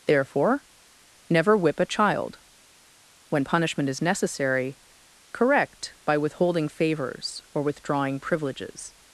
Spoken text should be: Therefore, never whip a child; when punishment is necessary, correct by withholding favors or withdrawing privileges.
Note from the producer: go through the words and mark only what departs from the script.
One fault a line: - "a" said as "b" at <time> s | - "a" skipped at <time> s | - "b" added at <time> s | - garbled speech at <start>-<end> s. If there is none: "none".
none